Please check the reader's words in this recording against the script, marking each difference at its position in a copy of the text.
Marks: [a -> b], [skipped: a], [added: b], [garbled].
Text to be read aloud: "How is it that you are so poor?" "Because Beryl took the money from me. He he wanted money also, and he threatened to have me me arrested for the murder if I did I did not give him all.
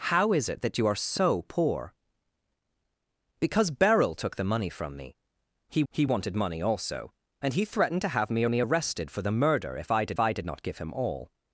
"How is it that you are so poor?" "Because Beryl took the money from me. He he wanted money also, and he threatened to have me me arrested for the murder if I did I did not give him all.